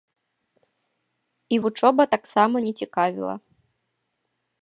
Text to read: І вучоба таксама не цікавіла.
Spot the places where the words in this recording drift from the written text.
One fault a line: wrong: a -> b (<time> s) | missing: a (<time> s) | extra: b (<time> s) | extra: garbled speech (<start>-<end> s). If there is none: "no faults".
no faults